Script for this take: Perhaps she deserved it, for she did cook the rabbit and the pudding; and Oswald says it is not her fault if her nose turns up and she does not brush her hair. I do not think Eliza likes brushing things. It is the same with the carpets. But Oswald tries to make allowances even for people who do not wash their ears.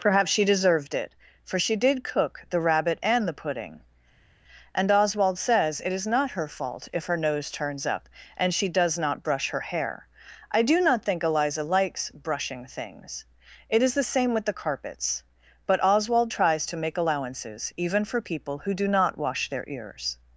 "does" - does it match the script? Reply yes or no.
yes